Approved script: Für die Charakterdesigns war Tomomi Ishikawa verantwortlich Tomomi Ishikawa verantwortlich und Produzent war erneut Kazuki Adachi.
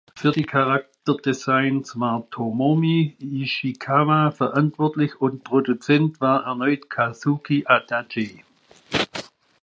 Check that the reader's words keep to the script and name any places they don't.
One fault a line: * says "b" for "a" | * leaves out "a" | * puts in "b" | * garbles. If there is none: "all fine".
* leaves out "Tomomi Ishikawa verantwortlich"